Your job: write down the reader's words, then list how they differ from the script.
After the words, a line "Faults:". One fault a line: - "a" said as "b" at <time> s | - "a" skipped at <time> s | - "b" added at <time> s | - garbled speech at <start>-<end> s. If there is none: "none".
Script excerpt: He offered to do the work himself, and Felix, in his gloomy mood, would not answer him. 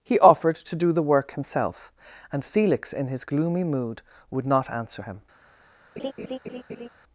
He offered to do the work himself, and Felix, in his gloomy mood, would not answer him.
Faults:
none